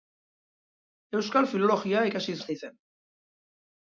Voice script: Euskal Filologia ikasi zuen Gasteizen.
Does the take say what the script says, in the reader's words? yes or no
no